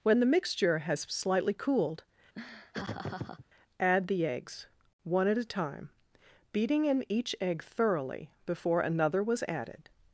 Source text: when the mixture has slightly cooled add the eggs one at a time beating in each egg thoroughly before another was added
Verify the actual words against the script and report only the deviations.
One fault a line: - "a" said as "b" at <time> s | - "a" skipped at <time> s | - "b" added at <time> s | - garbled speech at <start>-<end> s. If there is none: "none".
none